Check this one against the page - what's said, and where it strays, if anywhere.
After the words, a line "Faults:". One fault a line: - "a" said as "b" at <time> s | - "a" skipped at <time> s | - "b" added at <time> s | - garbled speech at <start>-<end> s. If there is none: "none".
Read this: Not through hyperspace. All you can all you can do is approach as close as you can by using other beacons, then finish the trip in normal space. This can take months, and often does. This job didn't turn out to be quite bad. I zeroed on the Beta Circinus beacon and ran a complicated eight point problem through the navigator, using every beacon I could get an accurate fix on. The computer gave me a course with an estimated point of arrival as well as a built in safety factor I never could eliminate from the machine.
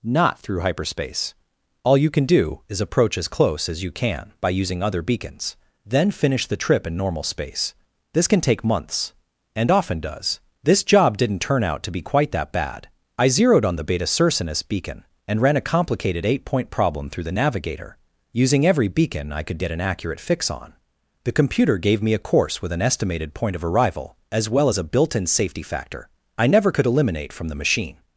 Not through hyperspace. All you can do is approach as close as you can by using other beacons, then finish the trip in normal space. This can take months, and often does. This job didn't turn out to be quite that bad. I zeroed on the Beta Circinus beacon and ran a complicated eight point problem through the navigator, using every beacon I could get an accurate fix on. The computer gave me a course with an estimated point of arrival as well as a built in safety factor I never could eliminate from the machine.
Faults:
- "all you can" skipped at 2.2 s
- "that" added at 12.3 s